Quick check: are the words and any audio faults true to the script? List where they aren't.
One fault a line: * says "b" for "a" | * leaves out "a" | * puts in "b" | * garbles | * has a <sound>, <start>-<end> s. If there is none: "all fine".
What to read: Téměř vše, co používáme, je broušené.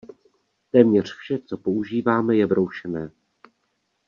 all fine